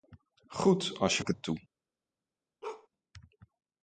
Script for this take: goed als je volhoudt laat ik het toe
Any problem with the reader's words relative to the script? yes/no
yes